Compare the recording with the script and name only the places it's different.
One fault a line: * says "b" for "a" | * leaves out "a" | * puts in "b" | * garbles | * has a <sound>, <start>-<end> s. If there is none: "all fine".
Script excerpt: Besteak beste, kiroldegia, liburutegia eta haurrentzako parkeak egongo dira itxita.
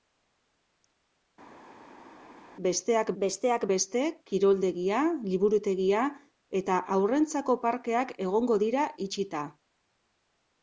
* puts in "besteak"